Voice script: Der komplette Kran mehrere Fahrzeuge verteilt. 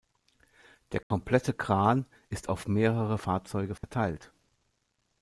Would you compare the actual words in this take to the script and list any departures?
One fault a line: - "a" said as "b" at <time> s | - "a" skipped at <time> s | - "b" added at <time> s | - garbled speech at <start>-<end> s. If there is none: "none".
- "ist auf" added at 2.3 s